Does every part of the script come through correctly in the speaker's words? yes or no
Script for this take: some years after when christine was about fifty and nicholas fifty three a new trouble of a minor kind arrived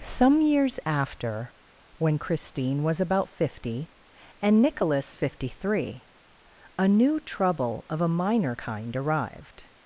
yes